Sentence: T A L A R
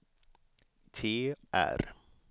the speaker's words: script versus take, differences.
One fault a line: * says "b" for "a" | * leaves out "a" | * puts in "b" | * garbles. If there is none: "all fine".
* leaves out "A L A"